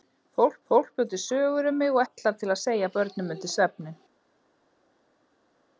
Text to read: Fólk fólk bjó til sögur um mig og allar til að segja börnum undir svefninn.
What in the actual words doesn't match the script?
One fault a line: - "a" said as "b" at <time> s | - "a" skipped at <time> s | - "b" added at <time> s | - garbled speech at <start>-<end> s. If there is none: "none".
none